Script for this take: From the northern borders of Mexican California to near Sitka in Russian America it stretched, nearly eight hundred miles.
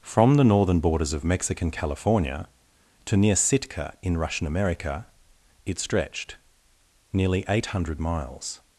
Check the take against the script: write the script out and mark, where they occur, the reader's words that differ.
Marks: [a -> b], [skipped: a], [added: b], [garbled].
From the northern borders of Mexican California to near Sitka in Russian America it stretched, nearly eight hundred miles.